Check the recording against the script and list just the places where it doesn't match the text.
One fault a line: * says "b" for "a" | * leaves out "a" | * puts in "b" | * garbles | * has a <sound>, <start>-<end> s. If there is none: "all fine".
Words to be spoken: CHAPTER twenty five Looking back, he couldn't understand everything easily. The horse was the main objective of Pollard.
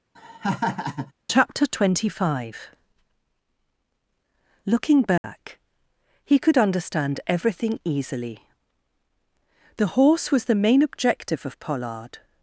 * has a laugh, 0.1-1.1 s
* has a dropout, 5.2-5.2 s
* says "could" for "couldn't"